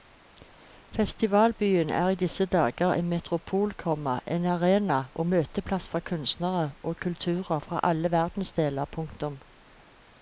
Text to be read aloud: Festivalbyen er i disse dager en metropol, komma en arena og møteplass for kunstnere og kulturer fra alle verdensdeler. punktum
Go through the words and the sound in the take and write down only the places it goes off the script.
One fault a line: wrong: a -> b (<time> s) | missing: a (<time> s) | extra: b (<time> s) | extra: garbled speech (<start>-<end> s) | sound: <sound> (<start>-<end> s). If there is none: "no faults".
no faults